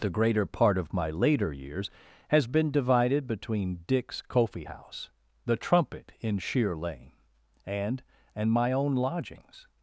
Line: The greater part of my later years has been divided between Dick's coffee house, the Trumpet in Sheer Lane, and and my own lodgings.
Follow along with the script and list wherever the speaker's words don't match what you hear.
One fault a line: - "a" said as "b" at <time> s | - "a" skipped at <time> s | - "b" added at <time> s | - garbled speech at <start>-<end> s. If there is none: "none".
none